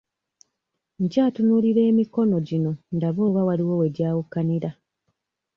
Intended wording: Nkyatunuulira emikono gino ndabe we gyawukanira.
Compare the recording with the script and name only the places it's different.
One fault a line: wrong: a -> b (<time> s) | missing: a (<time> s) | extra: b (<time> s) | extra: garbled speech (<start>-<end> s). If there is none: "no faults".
extra: oba waliwo (3.3 s)